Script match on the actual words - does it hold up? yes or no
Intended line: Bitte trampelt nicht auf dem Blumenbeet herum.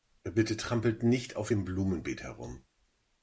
yes